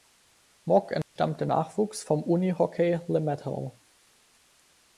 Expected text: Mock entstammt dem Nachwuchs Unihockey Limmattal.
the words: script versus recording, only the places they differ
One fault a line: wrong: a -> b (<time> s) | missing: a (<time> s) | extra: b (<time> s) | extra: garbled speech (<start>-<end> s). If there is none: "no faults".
extra: vom (2.0 s)